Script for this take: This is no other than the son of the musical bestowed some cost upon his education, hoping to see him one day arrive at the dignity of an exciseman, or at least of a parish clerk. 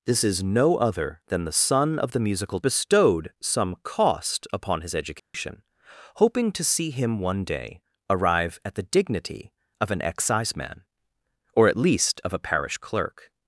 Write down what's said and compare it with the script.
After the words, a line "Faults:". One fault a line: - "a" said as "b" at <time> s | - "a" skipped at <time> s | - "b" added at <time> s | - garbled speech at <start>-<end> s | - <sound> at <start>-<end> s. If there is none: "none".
This is no other than the son of the musical bestowed some cost upon his education, hoping to see him one day arrive at the dignity of an exciseman, or at least of a parish clerk.
Faults:
- dropout at 5.2-5.3 s